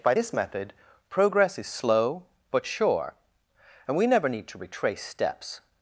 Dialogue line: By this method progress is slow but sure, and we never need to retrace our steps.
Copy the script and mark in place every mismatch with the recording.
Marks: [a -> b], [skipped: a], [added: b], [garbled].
By this method progress is slow but sure, and we never need to retrace [skipped: our] steps.